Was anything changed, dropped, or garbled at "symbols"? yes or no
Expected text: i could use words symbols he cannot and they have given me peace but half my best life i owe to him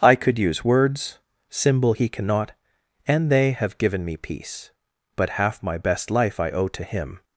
yes